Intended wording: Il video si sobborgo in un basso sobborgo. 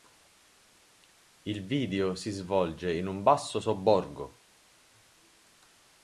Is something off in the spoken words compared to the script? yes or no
yes